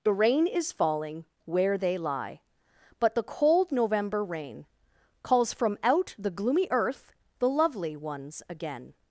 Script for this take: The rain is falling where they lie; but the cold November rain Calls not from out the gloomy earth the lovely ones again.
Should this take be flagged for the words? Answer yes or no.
yes